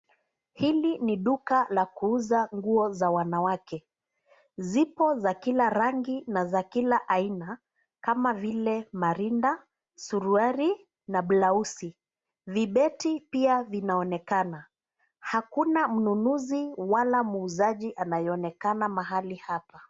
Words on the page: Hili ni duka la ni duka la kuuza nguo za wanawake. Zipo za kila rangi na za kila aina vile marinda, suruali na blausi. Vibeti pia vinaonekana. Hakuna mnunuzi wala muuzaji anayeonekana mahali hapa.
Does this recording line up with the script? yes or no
no